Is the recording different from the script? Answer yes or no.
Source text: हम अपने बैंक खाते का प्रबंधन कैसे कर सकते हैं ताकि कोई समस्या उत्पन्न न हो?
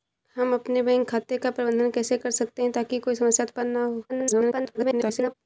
yes